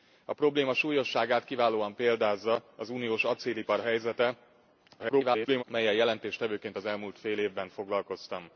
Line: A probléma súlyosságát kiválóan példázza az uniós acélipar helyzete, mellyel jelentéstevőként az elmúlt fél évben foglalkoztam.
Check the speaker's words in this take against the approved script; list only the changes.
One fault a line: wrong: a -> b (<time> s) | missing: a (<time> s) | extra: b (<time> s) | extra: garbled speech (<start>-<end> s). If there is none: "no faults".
extra: garbled speech (5.0-5.6 s)